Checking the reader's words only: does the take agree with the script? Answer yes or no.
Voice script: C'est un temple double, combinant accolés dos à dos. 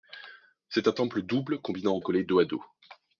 yes